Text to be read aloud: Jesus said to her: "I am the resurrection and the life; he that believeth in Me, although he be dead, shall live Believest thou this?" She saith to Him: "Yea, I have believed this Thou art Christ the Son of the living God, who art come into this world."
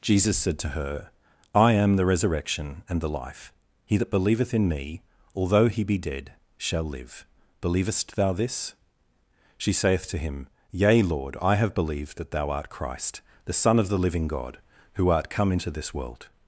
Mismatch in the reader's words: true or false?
true